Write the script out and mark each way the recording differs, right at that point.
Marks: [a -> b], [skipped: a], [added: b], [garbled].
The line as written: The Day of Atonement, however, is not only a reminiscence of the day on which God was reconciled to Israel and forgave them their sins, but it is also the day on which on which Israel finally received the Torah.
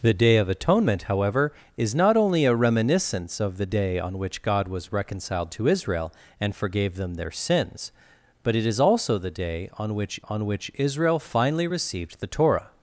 The Day of Atonement, however, is not only a reminiscence of the day on which God was reconciled to Israel and forgave them their sins, but it is also the day on which on which Israel finally received the Torah.